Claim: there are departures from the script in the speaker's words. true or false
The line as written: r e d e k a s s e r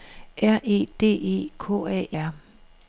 true